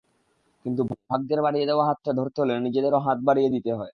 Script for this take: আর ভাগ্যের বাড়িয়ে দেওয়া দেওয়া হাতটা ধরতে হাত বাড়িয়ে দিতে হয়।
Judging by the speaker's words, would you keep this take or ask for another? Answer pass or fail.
fail